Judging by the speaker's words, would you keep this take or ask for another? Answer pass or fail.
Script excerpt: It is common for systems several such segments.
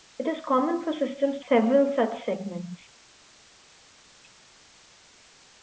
pass